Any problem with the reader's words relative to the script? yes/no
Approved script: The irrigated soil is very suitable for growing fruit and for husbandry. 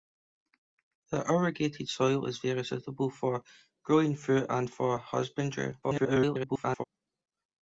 yes